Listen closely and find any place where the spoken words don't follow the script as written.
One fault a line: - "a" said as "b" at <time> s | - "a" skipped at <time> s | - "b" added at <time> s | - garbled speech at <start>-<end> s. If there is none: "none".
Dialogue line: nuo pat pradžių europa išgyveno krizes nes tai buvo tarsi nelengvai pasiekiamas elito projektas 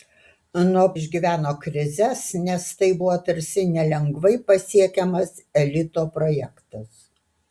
- "pat pradžių europa" skipped at 0.8 s